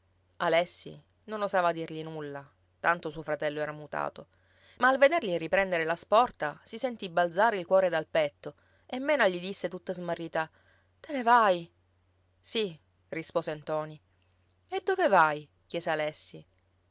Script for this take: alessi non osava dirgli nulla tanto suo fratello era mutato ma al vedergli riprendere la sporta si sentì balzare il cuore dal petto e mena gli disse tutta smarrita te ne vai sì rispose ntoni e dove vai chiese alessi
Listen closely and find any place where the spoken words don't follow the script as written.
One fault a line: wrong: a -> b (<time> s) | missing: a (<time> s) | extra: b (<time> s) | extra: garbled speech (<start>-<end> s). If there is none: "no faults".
no faults